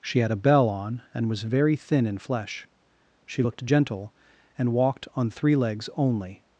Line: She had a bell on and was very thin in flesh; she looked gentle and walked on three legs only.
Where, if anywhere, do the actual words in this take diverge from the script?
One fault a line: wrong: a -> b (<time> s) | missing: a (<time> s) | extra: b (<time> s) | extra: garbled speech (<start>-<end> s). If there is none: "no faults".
no faults